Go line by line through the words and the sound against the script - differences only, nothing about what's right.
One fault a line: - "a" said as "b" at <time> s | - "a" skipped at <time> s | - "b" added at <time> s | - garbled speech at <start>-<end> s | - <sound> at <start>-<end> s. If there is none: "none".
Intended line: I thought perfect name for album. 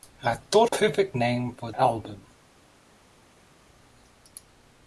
none